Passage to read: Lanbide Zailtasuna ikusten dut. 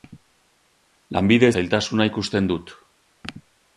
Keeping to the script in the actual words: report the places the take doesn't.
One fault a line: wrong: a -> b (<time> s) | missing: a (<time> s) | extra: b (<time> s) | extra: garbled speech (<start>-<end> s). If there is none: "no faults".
no faults